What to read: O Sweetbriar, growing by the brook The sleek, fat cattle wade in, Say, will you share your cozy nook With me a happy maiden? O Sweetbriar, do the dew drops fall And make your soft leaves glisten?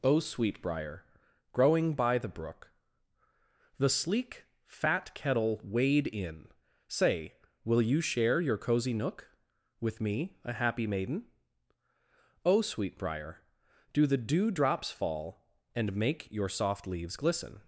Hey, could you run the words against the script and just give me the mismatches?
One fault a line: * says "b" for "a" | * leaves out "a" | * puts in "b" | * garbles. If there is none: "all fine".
* says "kettle" for "cattle"